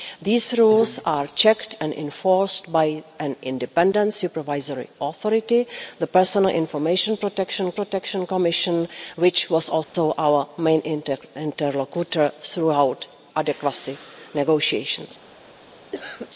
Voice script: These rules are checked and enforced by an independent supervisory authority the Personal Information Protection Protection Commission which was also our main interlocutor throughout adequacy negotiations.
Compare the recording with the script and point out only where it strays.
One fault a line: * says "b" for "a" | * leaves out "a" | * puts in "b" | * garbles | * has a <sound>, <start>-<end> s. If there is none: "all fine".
* has a dropout, 9.8-9.9 s
* has a cough, 15.9-16.3 s